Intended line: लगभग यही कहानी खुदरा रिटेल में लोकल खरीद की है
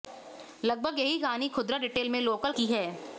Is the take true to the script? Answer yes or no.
no